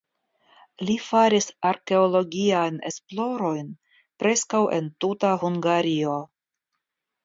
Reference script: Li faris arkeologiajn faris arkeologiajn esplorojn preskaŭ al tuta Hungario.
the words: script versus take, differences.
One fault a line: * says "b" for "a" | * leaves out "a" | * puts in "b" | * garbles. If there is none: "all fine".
* leaves out "faris arkeologiajn"
* says "en" for "al"